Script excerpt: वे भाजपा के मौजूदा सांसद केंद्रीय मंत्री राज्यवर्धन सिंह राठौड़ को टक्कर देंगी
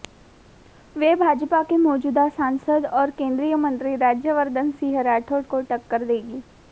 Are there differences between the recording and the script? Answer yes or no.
yes